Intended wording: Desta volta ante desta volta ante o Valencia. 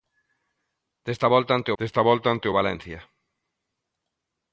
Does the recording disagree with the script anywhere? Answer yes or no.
no